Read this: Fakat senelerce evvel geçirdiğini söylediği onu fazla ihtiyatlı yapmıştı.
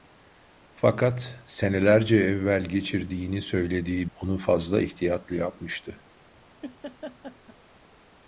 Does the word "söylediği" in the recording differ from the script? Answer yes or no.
no